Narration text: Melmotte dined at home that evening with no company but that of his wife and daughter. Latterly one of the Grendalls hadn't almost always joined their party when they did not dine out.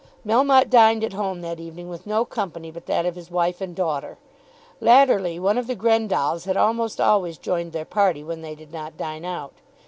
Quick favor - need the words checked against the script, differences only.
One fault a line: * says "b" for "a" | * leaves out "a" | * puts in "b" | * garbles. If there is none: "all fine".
* says "had" for "hadn't"